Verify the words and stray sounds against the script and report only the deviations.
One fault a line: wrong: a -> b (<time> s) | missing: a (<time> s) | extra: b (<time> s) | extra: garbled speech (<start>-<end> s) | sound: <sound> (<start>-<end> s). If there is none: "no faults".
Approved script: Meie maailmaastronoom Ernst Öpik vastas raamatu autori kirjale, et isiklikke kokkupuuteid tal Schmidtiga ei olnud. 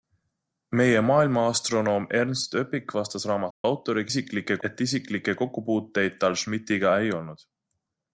sound: dropout (3.5-3.6 s)
wrong: kirjale -> isiklikke (4.1 s)